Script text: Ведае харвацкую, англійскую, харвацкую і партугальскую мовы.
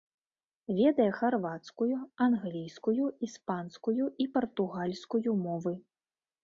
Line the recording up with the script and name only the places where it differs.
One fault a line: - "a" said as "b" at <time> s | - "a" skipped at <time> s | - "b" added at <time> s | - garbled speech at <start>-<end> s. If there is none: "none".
- "харвацкую" said as "іспанскую" at 3.3 s